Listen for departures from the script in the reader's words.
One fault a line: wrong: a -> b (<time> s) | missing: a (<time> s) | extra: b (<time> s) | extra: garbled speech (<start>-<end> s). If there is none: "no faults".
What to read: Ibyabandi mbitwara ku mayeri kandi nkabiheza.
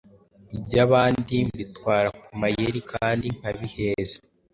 no faults